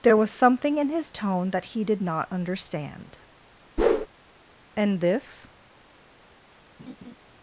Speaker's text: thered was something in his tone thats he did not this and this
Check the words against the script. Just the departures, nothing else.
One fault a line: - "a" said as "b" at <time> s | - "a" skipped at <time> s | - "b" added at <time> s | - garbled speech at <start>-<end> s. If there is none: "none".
- "thered" said as "there" at 0.0 s
- "thats" said as "that" at 1.5 s
- "this" said as "understand" at 2.3 s